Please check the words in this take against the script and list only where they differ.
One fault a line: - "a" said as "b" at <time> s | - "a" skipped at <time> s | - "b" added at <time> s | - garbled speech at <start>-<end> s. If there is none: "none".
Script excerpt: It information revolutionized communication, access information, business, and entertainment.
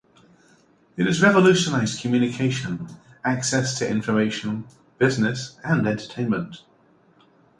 - "information" said as "has" at 1.1 s
- "to" added at 3.8 s